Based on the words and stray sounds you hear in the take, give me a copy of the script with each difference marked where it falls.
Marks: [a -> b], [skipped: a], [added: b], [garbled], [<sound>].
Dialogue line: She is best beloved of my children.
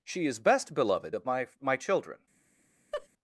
She is best beloved of my [added: my] children. [laugh]